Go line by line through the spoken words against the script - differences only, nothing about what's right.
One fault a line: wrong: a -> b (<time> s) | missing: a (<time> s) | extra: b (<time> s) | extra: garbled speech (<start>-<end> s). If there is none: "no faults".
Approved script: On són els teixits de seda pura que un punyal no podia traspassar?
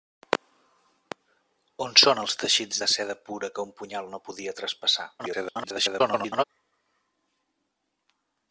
extra: garbled speech (5.2-6.4 s)